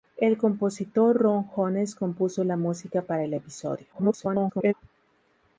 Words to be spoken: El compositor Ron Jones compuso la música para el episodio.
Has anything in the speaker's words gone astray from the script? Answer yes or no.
yes